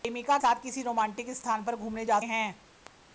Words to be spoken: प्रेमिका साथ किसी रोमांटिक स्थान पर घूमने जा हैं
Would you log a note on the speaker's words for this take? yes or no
no